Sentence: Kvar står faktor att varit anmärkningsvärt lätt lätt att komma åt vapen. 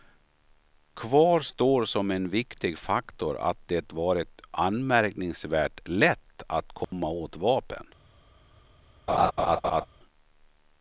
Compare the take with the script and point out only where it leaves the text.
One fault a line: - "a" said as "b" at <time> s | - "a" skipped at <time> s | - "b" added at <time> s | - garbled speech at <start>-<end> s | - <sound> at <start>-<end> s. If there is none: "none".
- "som en viktig" added at 1.9 s
- "det" added at 3.7 s
- "lätt" skipped at 6.4 s
- dropout at 6.8-6.9 s
- laugh at 9.1-9.9 s